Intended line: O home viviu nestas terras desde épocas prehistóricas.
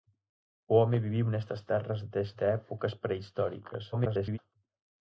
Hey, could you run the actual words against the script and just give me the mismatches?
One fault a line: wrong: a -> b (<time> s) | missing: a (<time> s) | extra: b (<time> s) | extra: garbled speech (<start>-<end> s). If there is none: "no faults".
extra: garbled speech (3.9-4.4 s)